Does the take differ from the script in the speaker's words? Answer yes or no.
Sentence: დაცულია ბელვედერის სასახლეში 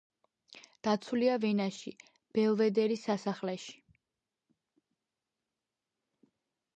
yes